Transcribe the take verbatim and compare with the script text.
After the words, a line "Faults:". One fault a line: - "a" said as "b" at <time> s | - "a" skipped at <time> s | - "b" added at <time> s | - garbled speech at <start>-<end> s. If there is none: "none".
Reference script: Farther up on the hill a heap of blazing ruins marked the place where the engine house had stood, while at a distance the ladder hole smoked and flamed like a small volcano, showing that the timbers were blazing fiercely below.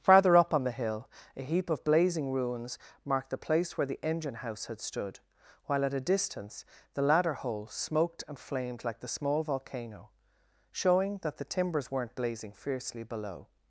Farther up on the hill a heap of blazing ruins marked the place where the engine house had stood, while at a distance the ladder hole smoked and flamed like the small volcano, showing that the timbers weren't blazing fiercely below.
Faults:
- "a" said as "the" at 9.0 s
- "were" said as "weren't" at 11.9 s